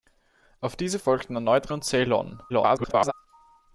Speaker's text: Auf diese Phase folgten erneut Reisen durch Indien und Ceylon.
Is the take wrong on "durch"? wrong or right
wrong